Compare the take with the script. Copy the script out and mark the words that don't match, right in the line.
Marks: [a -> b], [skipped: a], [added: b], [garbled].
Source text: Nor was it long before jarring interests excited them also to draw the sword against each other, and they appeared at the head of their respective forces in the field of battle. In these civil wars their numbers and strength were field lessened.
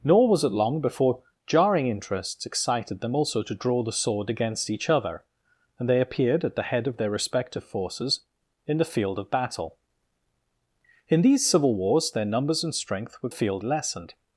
Nor was it long before jarring interests excited them also to draw the sword against each other, and they appeared at the head of their respective forces in the field of battle. In these civil wars their numbers and strength were field lessened.